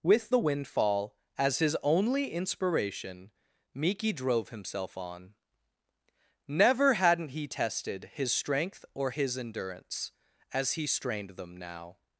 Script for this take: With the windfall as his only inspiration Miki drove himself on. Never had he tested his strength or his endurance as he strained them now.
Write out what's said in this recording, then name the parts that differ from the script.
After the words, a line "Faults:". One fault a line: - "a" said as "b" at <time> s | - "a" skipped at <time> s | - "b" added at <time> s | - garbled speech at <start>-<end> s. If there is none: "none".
With the windfall as his only inspiration Miki drove himself on. Never hadn't he tested his strength or his endurance as he strained them now.
Faults:
- "had" said as "hadn't" at 6.9 s